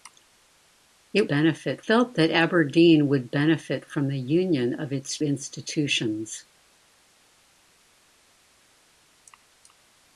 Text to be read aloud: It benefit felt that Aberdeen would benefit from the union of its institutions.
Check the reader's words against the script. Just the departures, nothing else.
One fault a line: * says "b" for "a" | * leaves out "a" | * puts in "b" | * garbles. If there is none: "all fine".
all fine